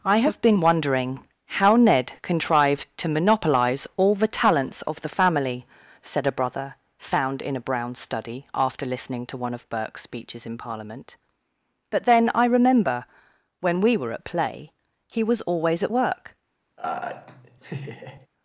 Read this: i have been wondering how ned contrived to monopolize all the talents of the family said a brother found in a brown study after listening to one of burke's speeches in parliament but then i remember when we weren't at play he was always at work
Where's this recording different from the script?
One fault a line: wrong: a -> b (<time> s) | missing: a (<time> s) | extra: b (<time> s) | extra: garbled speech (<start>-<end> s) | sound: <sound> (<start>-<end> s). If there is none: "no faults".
wrong: weren't -> were (14.0 s)
sound: laugh (16.8-18.3 s)